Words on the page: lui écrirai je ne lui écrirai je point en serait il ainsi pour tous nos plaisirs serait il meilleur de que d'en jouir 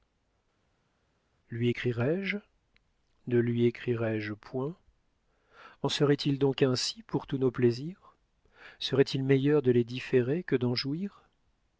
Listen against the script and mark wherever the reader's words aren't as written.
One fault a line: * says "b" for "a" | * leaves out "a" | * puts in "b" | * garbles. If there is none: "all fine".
* puts in "donc"
* puts in "les différer"